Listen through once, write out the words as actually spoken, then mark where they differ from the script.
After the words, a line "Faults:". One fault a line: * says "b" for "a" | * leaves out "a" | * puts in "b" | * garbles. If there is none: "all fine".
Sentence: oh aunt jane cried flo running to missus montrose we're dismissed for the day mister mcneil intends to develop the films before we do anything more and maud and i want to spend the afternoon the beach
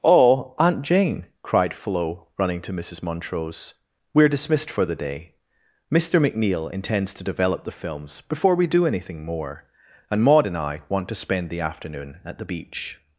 oh aunt jane cried flo running to missus montrose we're dismissed for the day mister mcneil intends to develop the films before we do anything more and maud and i want to spend the afternoon at the beach
Faults:
* puts in "at"